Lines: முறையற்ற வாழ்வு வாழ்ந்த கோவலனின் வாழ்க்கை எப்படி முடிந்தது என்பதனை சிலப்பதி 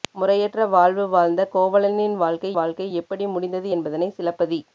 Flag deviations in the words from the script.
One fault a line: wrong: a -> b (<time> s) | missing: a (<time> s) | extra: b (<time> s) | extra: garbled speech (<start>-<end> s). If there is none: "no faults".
extra: வாழ்க்கை (2.5 s)